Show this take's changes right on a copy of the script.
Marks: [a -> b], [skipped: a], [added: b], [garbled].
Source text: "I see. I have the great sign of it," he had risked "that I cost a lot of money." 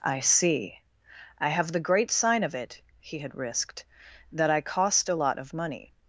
"I see. I have the great sign of it," he had risked "that I cost a lot of money."